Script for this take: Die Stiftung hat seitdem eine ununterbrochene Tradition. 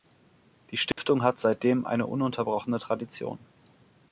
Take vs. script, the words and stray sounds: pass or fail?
fail